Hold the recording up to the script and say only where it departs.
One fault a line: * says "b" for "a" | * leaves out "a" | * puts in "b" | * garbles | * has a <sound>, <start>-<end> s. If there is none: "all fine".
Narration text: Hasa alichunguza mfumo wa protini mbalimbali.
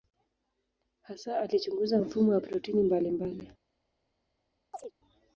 * has a chirp, 4.7-4.9 s